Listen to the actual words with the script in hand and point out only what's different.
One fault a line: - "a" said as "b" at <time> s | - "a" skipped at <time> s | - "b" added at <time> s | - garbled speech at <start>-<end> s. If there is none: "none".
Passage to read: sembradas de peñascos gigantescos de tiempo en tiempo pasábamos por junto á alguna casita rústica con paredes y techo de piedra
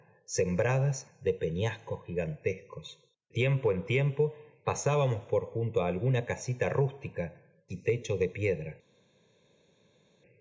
- "de" skipped at 2.9 s
- "con paredes" skipped at 7.2 s